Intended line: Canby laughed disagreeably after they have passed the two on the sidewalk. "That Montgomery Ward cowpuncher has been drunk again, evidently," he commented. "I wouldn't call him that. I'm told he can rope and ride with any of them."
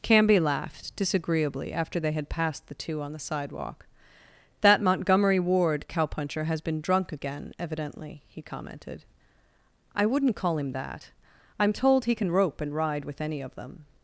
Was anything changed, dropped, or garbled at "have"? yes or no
yes